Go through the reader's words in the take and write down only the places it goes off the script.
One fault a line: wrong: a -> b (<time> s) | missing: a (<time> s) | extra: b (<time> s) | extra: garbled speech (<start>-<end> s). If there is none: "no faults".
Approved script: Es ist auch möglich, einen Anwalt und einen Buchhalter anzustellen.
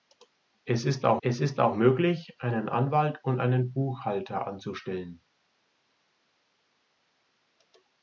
extra: es ist auch (1.2 s)